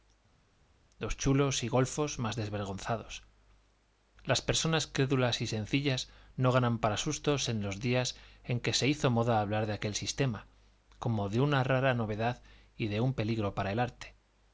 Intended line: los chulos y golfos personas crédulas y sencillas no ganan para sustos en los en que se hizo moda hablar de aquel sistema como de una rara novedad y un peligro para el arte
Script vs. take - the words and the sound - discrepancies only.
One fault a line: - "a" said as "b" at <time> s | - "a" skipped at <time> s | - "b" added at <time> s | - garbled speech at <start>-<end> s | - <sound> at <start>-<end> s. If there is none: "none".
- "más desvergonzados las" added at 2.2 s
- "días" added at 7.8 s
- "de" added at 12.9 s